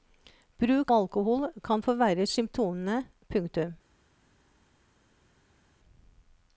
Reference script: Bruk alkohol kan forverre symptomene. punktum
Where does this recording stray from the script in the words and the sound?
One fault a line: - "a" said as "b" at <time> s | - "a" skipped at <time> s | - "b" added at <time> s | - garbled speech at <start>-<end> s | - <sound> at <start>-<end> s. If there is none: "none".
none